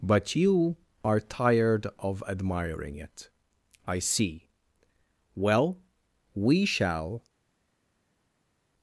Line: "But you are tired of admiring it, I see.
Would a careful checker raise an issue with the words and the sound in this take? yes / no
yes